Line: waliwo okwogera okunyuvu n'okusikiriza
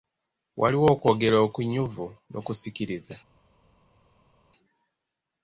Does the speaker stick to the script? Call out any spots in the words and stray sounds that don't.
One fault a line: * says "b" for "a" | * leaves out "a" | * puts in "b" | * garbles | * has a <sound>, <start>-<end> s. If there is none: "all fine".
all fine